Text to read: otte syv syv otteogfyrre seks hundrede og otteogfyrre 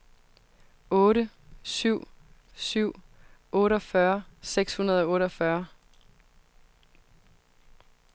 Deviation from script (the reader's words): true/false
false